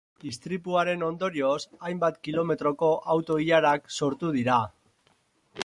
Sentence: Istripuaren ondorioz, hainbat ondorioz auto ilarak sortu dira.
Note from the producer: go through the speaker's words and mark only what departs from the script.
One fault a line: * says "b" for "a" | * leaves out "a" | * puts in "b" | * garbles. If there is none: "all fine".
* says "kilometroko" for "ondorioz"